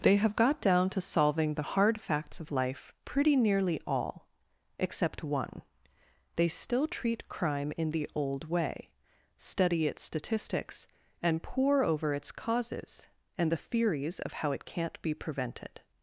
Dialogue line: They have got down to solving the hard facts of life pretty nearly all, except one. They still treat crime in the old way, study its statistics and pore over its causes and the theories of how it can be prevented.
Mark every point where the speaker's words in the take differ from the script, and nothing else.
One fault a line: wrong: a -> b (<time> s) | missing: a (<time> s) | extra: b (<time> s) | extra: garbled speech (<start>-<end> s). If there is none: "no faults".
wrong: can -> can't (14.6 s)